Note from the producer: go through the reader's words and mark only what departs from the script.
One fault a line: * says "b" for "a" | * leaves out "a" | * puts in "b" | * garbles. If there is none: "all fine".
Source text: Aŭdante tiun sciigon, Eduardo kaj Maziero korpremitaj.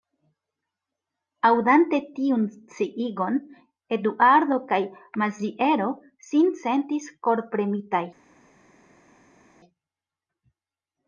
* puts in "sin sentis"